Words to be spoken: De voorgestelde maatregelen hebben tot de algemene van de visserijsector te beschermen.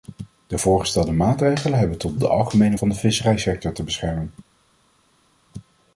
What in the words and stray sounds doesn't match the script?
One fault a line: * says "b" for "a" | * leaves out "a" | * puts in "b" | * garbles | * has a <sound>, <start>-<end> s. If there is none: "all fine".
all fine